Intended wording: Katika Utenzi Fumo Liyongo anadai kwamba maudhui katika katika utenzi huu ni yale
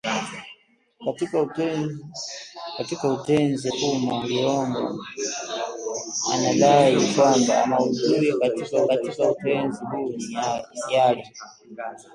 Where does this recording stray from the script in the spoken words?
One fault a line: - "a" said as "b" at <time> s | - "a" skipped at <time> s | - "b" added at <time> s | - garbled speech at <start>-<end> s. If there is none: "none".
none